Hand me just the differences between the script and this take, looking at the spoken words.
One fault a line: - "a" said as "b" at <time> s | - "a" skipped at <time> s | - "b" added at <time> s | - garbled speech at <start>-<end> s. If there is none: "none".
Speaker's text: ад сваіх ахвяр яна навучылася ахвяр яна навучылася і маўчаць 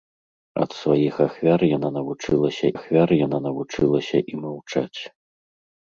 none